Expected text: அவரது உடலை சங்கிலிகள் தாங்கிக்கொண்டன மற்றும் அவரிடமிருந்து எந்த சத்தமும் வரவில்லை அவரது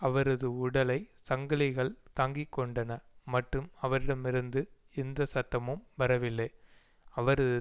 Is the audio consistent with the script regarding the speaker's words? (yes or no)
yes